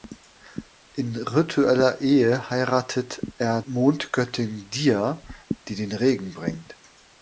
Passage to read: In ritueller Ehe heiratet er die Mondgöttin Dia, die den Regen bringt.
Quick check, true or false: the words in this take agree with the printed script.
false